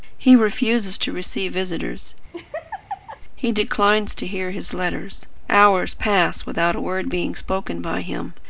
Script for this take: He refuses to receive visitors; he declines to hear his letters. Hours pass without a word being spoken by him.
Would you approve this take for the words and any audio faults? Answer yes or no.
no